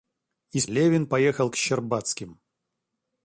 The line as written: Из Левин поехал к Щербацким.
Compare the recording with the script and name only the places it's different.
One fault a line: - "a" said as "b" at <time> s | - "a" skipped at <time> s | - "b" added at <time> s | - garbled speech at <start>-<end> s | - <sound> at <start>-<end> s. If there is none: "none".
none